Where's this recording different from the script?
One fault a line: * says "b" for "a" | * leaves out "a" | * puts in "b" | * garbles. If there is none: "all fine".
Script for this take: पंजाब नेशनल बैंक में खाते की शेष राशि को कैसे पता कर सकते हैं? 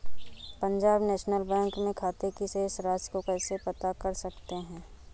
all fine